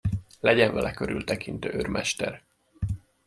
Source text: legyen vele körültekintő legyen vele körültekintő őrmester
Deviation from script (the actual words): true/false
true